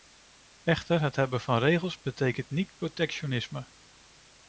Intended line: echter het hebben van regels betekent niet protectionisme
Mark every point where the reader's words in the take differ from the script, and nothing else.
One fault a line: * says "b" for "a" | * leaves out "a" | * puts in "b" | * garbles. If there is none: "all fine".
all fine